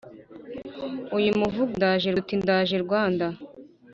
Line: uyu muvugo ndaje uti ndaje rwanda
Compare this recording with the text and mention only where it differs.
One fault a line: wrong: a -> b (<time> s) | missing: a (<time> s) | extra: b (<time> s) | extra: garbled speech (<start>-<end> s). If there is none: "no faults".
no faults